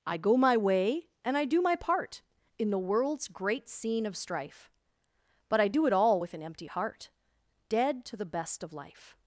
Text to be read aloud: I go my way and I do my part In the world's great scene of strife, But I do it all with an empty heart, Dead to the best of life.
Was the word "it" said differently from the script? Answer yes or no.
no